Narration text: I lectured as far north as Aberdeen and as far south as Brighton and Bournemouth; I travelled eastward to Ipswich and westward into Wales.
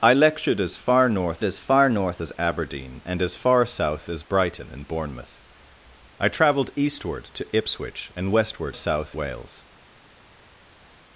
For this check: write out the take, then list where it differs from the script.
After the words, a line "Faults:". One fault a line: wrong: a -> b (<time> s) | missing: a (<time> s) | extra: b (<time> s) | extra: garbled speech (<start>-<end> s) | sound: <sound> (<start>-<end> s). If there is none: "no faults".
I lectured as far north as far north as Aberdeen and as far south as Brighton and Bournemouth; I travelled eastward to Ipswich and westward south Wales.
Faults:
extra: far north as (1.6 s)
wrong: into -> south (8.7 s)